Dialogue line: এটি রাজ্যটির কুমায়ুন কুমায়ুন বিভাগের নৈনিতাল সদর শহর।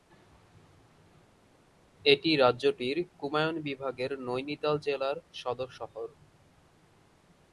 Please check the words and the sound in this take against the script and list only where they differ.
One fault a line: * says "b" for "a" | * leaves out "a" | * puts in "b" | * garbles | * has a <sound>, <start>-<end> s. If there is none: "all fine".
* leaves out "কুমায়ুন"
* puts in "জেলার"